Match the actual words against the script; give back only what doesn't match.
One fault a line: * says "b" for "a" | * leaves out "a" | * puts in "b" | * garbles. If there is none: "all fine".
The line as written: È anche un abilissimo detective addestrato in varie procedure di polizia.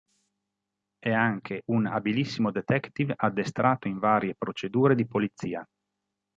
all fine